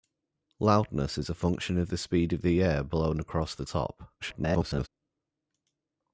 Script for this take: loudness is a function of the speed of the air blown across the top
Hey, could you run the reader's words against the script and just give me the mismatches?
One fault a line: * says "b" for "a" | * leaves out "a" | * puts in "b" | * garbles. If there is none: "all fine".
* garbles